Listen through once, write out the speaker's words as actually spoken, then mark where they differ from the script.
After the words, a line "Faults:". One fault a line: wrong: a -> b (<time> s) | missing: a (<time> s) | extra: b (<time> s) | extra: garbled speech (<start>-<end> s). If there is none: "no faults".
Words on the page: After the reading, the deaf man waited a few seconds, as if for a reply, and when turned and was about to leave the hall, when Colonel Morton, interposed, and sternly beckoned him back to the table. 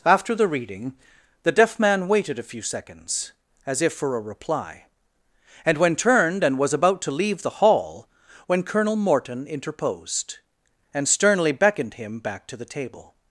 After the reading, the deaf man waited a few seconds, as if for a reply, and when turned and was about to leave the hall, when Colonel Morton, interposed, and sternly beckoned him back to the table.
Faults:
no faults